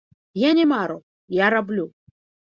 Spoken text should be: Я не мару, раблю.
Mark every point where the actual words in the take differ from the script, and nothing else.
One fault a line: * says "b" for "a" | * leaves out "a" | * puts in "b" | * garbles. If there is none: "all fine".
* puts in "я"